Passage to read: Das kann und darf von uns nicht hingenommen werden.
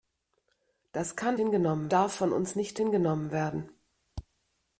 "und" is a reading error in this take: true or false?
true